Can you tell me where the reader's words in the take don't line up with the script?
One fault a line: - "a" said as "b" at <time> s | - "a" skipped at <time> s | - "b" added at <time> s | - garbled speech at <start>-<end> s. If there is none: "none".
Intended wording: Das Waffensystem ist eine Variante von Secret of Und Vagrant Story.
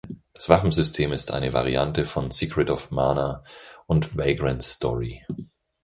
- "Mana" added at 2.9 s